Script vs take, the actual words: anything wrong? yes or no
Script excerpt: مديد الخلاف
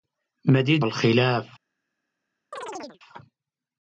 no